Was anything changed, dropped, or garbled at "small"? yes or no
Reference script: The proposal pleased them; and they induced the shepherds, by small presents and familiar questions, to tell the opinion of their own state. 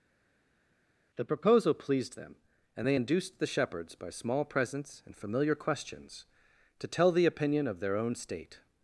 no